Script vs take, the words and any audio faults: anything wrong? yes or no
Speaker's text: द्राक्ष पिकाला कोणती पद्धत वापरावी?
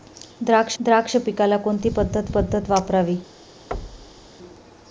yes